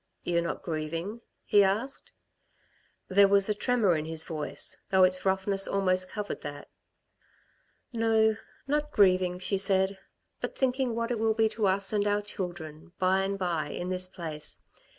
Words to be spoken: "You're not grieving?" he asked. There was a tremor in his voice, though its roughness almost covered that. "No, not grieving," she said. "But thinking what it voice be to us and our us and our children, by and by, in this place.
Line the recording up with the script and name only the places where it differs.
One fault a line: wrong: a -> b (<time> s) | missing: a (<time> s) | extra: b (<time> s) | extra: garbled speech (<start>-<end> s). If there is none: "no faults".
wrong: voice -> will (11.2 s)
missing: us and our (12.2 s)